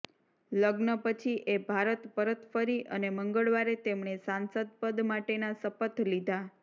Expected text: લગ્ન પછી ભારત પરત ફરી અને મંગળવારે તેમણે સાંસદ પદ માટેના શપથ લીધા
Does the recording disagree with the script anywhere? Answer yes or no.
yes